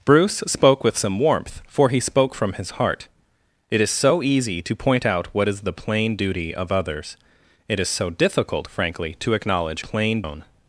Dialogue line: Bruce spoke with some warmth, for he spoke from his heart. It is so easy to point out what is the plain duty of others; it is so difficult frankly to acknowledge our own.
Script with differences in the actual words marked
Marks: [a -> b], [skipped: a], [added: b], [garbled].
Bruce spoke with some warmth, for he spoke from his heart. It is so easy to point out what is the plain duty of others; it is so difficult frankly to acknowledge [our -> plain] own.